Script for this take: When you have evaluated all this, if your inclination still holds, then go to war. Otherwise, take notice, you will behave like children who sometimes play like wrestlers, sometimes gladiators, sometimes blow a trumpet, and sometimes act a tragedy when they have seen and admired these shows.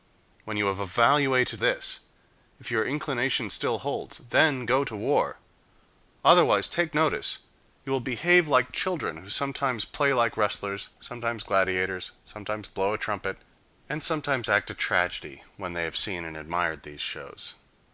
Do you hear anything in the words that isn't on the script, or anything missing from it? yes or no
yes